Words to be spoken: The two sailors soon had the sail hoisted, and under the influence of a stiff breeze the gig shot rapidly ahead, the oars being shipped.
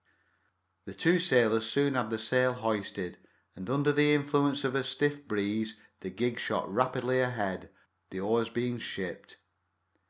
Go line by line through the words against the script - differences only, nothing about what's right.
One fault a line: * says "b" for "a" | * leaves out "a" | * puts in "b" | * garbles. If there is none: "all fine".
all fine